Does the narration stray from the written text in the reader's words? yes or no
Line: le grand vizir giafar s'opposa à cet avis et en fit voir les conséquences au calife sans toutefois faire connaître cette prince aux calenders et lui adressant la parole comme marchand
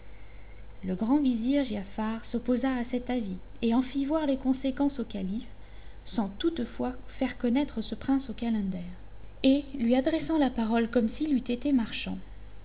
yes